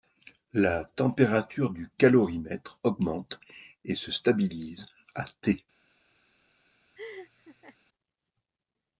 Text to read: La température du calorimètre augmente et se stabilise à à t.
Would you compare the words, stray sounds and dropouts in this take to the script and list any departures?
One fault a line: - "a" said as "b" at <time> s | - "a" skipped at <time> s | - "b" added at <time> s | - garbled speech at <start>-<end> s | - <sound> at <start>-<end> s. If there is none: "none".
- "à" skipped at 5.3 s
- laugh at 7.0-7.8 s